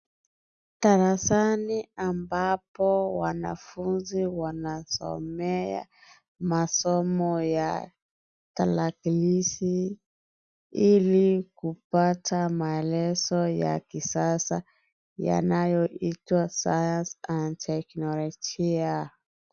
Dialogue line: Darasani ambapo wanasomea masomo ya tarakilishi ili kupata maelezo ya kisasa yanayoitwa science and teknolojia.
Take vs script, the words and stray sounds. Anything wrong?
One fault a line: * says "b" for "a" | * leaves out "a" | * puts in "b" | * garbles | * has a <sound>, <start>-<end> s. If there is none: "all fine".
* puts in "wanafunzi"